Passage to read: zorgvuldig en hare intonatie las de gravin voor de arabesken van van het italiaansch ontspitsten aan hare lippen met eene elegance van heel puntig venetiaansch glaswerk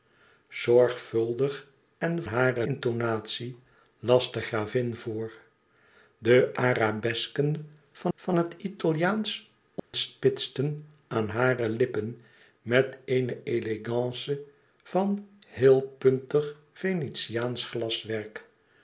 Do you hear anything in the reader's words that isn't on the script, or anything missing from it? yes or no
no